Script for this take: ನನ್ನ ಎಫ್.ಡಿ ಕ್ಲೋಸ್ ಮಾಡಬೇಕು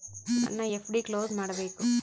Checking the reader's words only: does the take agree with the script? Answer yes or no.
yes